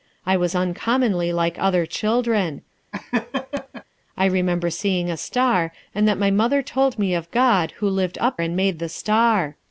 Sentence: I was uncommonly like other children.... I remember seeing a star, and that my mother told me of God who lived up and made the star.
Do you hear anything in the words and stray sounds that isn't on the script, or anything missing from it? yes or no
yes